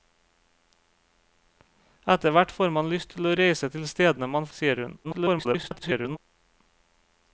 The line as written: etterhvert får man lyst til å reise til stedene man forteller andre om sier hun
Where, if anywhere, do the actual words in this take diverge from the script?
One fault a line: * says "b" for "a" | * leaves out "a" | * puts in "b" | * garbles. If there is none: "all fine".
* leaves out "forteller andre om"
* garbles